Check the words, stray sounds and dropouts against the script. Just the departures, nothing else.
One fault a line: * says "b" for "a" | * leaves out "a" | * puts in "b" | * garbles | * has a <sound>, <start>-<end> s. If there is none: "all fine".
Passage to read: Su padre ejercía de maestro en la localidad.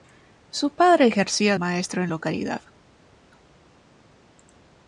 * leaves out "de"
* leaves out "la"